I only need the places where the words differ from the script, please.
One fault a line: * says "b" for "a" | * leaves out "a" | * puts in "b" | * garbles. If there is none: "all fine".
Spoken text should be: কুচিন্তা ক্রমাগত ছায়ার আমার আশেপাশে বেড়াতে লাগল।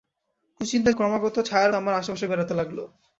all fine